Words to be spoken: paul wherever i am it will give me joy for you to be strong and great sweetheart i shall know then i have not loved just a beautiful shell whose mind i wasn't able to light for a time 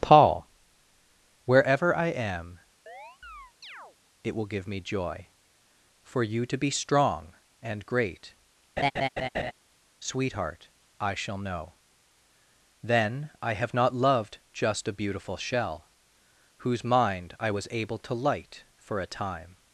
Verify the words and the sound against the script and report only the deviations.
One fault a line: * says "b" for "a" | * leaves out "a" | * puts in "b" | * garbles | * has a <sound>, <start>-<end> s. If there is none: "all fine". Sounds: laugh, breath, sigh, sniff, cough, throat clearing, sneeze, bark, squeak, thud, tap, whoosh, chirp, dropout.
* has a chirp, 2.9-4.0 s
* has a laugh, 8.8-9.5 s
* says "was" for "wasn't"